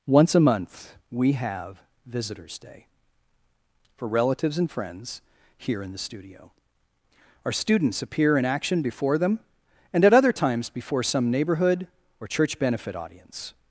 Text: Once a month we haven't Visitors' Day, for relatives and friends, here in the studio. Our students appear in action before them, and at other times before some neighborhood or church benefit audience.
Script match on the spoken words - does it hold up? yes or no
no